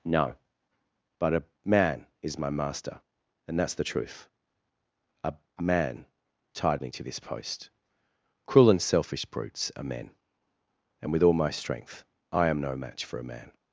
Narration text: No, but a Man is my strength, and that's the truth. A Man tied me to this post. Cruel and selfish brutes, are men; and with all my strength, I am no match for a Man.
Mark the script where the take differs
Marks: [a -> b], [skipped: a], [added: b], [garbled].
No, but a Man is my [strength, -> master] and that's the truth. A Man tied me to this post. Cruel and selfish brutes, are men; and with all my strength, I am no match for a Man.